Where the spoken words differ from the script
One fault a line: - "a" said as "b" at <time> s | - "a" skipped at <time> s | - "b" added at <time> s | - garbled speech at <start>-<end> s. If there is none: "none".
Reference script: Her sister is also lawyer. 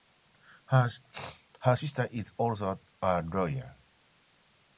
- "a" added at 3.0 s